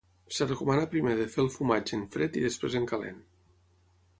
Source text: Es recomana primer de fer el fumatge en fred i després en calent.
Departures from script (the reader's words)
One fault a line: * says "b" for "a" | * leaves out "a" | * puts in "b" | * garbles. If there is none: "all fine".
all fine